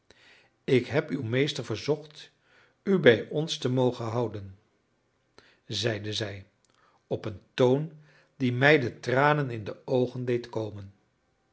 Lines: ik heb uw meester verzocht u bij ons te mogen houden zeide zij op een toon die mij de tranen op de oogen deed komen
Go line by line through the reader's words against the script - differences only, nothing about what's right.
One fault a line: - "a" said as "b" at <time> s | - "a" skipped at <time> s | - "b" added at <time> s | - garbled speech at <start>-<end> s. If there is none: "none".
- "op" said as "in" at 9.5 s